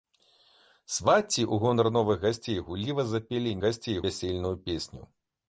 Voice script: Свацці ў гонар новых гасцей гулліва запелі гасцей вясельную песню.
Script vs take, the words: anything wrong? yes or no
no